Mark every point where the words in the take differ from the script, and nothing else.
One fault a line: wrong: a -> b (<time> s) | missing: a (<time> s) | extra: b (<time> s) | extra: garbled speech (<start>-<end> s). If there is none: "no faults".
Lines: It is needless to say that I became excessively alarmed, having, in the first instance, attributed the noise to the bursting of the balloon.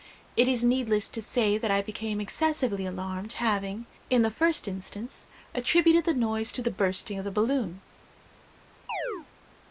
no faults